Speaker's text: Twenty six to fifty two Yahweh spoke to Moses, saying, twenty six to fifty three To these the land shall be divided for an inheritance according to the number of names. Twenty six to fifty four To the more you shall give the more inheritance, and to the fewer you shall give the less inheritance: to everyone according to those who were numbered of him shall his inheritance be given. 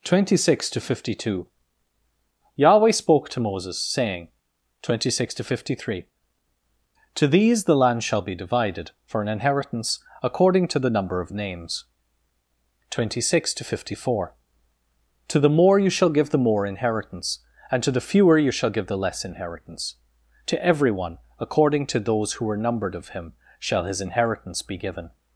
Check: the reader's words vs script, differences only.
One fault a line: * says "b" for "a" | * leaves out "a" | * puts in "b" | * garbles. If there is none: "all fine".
all fine